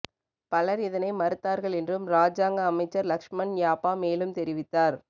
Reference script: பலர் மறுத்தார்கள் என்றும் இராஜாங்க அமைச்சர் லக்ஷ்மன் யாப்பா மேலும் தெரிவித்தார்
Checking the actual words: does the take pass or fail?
fail